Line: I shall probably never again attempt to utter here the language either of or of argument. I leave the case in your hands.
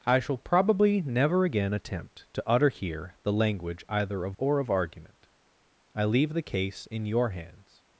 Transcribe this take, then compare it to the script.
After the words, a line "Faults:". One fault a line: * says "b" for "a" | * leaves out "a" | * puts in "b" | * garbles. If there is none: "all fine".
I shall probably never again attempt to utter here the language either of or of argument. I leave the case in your hands.
Faults:
all fine